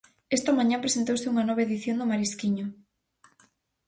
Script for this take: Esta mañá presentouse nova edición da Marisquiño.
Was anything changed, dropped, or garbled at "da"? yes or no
yes